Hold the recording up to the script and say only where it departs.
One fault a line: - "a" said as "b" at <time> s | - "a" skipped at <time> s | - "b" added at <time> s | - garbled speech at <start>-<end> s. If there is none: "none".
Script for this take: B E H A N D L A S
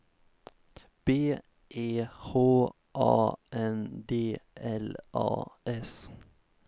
none